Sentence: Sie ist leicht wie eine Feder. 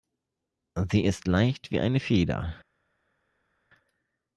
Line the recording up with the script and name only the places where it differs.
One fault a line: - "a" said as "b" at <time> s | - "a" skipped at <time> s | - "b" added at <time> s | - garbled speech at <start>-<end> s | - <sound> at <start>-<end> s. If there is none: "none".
none